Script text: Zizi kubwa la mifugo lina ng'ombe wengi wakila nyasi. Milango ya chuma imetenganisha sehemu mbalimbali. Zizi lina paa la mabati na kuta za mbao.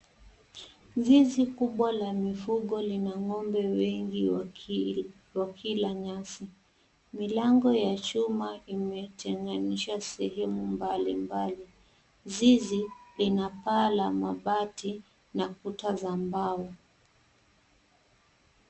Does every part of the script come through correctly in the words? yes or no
yes